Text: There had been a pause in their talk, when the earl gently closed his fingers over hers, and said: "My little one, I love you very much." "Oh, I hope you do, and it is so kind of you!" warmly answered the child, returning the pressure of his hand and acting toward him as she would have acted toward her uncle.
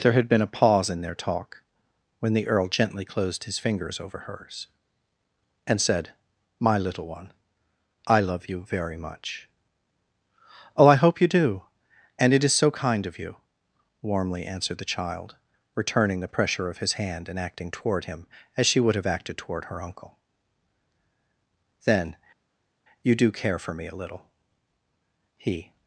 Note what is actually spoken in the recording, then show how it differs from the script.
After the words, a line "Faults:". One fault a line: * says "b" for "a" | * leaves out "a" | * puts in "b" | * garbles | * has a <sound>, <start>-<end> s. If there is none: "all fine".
There had been a pause in their talk, when the earl gently closed his fingers over hers, and said: "My little one, I love you very much." "Oh, I hope you do, and it is so kind of you!" warmly answered the child, returning the pressure of his hand and acting toward him as she would have acted toward her uncle. "Then, you do care for me a little?" he
Faults:
* puts in "Then you do care for me a little he"